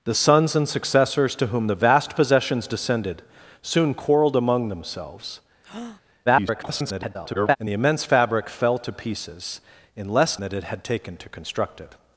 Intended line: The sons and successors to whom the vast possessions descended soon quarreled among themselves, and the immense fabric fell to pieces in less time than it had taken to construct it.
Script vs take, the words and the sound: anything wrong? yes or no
yes